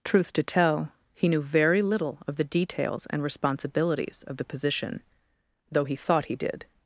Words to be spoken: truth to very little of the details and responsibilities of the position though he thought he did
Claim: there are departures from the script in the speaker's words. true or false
true